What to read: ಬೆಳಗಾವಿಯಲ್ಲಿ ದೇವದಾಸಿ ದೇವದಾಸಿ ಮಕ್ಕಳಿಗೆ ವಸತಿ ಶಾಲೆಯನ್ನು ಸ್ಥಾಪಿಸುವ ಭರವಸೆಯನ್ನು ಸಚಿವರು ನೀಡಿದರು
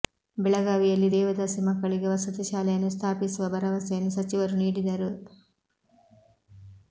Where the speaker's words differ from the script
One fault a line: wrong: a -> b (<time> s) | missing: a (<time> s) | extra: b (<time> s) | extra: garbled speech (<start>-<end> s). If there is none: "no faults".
missing: ದೇವದಾಸಿ (1.6 s)